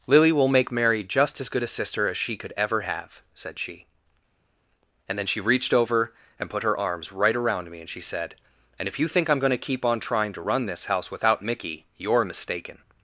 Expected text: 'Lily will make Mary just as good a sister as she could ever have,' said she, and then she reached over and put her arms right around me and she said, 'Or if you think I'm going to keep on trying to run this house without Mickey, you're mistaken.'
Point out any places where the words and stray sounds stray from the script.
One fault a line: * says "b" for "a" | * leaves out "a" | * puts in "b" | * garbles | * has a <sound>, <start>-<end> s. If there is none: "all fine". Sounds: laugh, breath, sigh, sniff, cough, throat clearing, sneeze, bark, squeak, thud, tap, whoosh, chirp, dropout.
* says "And" for "Or"